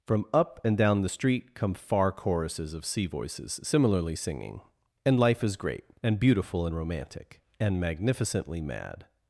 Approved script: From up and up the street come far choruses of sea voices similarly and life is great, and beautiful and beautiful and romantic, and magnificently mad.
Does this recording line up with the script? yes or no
no